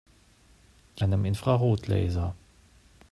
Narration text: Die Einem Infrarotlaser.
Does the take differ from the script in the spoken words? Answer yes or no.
no